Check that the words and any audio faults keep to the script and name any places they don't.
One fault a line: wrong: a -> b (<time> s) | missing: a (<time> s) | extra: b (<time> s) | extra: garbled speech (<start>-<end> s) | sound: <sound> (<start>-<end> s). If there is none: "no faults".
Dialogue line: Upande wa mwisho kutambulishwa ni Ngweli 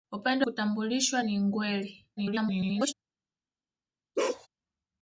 missing: wa mwisho (0.5 s)
extra: garbled speech (2.2-2.9 s)
sound: bark (4.2-4.5 s)